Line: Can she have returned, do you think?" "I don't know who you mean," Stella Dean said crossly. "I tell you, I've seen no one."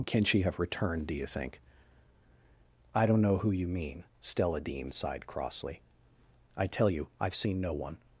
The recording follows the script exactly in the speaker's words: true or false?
false